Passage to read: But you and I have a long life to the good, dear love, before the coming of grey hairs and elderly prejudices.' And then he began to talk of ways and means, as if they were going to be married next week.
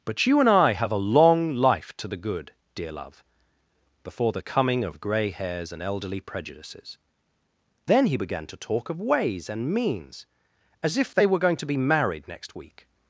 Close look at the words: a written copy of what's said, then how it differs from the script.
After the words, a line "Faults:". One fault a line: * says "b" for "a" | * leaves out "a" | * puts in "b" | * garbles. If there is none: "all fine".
But you and I have a long life to the good, dear love, before the coming of grey hairs and elderly prejudices.' Then he began to talk of ways and means, as if they were going to be married next week.
Faults:
* leaves out "And"